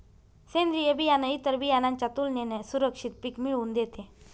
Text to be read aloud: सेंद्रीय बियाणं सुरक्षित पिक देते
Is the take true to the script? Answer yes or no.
no